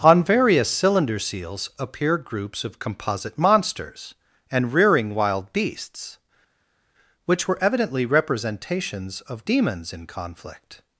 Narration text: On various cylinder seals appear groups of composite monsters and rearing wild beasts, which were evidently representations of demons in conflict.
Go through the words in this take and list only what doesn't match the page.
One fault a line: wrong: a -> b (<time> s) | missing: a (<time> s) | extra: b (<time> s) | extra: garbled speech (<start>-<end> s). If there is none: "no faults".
no faults